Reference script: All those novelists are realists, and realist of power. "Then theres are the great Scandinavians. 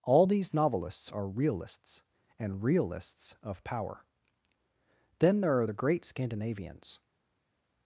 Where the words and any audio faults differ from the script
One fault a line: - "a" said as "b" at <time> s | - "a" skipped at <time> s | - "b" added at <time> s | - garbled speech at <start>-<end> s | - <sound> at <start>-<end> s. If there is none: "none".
- "those" said as "these" at 0.2 s
- "realist" said as "realists" at 2.6 s
- "theres" said as "there" at 5.4 s